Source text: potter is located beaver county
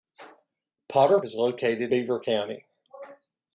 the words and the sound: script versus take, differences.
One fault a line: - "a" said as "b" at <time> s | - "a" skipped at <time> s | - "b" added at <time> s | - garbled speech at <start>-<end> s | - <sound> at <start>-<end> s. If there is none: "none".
none